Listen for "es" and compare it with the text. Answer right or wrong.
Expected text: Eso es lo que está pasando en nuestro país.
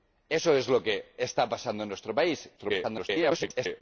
right